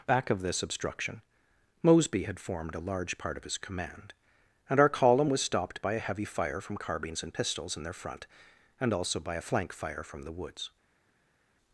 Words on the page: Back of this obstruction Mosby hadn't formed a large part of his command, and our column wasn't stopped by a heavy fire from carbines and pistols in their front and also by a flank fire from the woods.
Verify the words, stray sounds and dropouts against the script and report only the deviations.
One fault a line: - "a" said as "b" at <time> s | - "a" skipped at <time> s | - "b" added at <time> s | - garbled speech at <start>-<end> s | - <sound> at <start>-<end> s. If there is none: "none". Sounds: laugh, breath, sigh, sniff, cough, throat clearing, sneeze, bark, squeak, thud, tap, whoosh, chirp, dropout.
- "hadn't" said as "had" at 2.2 s
- "wasn't" said as "was" at 5.3 s